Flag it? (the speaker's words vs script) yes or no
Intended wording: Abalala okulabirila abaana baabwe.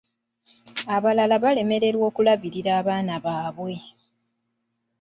yes